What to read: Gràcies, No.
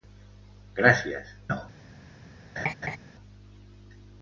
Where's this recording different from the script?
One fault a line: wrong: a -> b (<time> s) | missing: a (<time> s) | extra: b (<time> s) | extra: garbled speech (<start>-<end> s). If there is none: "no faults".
no faults